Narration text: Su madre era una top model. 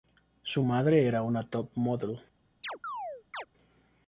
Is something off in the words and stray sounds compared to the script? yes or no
yes